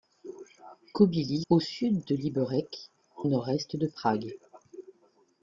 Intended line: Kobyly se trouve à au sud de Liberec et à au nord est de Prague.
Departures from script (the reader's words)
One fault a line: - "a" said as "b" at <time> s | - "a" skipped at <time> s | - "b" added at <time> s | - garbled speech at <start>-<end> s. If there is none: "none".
- "se trouve à" skipped at 1.4 s
- "et à au" skipped at 2.9 s